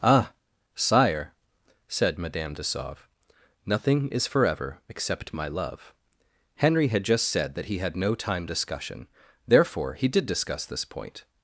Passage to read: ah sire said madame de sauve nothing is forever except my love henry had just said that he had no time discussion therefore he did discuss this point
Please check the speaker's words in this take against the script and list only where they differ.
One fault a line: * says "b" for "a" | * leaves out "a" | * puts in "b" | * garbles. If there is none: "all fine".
all fine